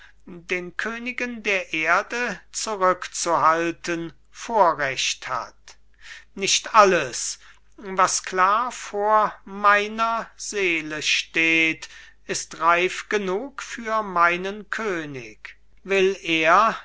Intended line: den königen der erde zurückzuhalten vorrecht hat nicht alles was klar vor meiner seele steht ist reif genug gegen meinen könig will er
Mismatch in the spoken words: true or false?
true